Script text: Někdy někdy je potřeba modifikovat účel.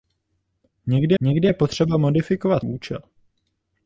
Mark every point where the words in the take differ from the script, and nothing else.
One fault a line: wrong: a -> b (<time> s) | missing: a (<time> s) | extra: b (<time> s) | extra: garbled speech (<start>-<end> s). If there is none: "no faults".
no faults